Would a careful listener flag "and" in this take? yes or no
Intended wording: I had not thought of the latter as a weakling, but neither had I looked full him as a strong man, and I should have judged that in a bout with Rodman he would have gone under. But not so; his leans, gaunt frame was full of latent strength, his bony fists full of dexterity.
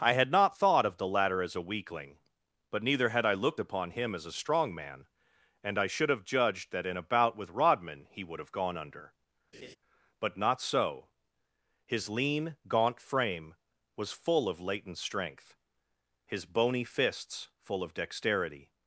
no